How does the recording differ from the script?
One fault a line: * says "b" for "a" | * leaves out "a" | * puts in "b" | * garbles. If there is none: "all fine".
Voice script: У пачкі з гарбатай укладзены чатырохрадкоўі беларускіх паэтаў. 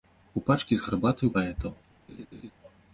* leaves out "укладзены чатырохрадкоўі беларускіх"